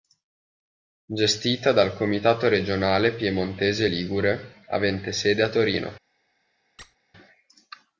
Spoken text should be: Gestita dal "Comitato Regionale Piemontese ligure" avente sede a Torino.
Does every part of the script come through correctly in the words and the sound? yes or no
no